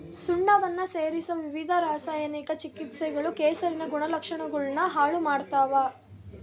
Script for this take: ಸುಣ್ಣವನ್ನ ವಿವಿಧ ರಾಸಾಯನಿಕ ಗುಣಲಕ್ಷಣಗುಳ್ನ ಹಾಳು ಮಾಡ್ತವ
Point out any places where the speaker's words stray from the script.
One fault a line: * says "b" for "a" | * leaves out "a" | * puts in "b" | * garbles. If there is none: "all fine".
* puts in "ಸೇರಿಸೊ"
* puts in "ಚಿಕಿತ್ಸೆಗಳು ಕೆಸರಿನ"